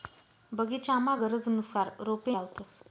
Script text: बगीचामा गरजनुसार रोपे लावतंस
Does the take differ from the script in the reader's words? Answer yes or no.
no